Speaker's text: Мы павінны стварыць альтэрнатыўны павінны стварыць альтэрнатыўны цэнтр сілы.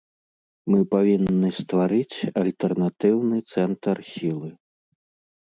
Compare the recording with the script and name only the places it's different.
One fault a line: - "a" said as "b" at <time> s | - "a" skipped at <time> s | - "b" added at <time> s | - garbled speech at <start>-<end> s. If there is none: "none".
- "павінны стварыць альтэрнатыўны" skipped at 3.4 s